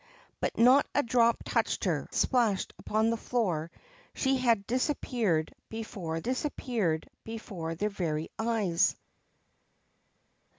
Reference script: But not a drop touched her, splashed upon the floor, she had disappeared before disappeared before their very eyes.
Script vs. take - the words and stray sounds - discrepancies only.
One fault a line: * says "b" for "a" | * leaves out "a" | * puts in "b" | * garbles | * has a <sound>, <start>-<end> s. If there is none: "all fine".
all fine